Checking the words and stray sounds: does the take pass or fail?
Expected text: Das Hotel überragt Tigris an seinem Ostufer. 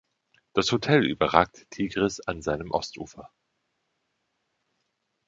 pass